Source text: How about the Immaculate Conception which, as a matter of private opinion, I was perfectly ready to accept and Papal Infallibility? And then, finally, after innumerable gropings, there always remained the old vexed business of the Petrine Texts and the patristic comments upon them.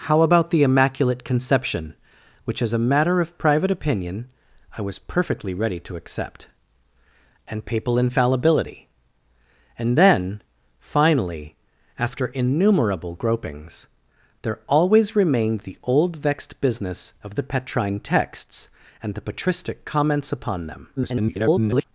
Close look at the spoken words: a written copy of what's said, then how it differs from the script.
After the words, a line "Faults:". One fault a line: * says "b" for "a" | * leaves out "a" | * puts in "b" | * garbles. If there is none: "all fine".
How about the Immaculate Conception which, as a matter of private opinion, I was perfectly ready to accept and Papal Infallibility? And then, finally, after innumerable gropings, there always remained the old vexed business of the Petrine Texts and the patristic comments upon them. [garbled]
Faults:
* garbles